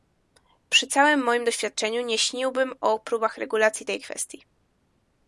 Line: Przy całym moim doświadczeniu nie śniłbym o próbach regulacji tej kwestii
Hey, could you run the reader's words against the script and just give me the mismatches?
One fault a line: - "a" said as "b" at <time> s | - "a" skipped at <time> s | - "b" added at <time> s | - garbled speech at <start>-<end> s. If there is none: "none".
none